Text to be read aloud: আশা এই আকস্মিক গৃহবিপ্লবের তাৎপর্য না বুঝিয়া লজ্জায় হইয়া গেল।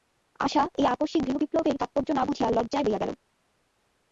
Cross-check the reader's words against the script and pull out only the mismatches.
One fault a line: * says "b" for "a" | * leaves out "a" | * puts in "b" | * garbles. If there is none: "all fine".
all fine